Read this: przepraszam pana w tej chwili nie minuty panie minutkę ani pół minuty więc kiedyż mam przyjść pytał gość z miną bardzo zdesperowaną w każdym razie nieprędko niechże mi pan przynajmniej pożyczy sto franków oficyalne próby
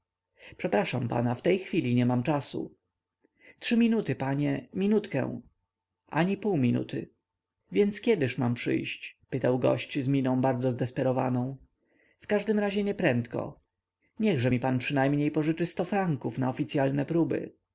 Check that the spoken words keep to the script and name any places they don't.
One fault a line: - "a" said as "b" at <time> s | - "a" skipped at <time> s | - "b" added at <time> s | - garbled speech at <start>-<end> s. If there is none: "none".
- "mam czasu trzy" added at 2.0 s
- "na" added at 16.4 s